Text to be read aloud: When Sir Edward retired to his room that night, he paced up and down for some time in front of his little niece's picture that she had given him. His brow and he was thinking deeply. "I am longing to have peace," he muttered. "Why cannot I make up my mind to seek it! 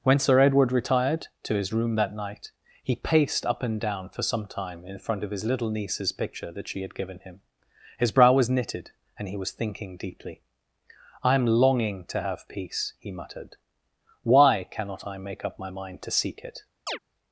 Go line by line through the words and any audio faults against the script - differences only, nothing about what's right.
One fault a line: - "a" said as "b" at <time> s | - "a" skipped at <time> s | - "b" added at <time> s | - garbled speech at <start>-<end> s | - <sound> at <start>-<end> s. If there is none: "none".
- "was knitted" added at 8.3 s
- chirp at 16.9-17.0 s